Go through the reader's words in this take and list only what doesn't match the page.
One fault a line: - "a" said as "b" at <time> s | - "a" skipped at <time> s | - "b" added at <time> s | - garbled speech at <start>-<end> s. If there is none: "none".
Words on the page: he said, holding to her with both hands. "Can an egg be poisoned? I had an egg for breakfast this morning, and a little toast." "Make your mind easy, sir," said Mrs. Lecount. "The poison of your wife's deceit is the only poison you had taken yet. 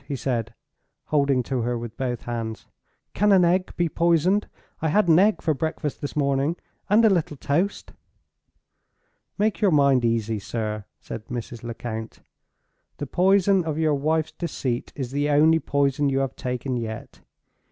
- "had" said as "have" at 16.2 s